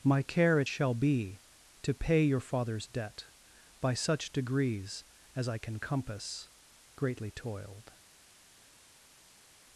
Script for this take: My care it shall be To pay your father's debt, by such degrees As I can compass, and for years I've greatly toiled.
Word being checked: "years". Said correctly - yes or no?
no